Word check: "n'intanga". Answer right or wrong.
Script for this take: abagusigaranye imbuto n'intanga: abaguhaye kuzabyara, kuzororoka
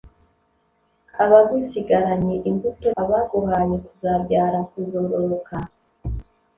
wrong